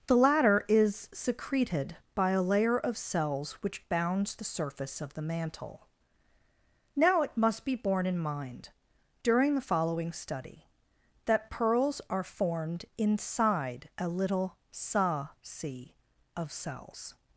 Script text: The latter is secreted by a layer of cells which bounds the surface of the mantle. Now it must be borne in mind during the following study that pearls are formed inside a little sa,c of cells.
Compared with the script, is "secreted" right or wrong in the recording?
right